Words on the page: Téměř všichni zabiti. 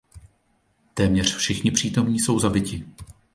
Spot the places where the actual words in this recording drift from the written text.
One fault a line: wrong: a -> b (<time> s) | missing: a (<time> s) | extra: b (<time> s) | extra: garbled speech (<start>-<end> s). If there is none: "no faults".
extra: přítomní jsou (1.7 s)